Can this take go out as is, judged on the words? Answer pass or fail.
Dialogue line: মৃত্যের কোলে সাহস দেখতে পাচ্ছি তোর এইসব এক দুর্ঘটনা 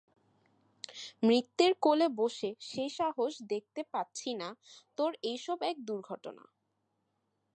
fail